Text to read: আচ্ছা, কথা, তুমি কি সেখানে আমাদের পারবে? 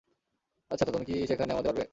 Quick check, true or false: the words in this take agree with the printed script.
true